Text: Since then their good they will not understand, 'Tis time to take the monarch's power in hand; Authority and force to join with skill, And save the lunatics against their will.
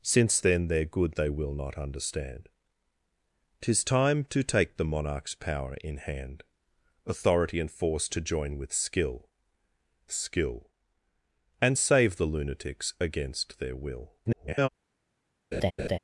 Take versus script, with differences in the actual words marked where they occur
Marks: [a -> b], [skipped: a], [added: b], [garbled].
Since then their good they will not understand, 'Tis time to take the monarch's power in hand; Authority and force to join with skill, [added: skill] And save the lunatics against their will. [garbled]